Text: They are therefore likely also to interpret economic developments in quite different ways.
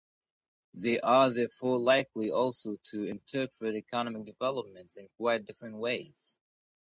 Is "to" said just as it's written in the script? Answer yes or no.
yes